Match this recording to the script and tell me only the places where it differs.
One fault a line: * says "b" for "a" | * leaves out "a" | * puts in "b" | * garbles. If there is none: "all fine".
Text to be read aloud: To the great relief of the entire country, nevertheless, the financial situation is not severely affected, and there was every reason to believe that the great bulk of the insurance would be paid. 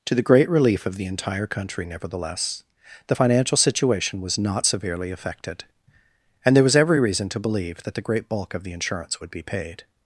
* says "was" for "is"